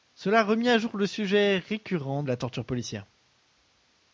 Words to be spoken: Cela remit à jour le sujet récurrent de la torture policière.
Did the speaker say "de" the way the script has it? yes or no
no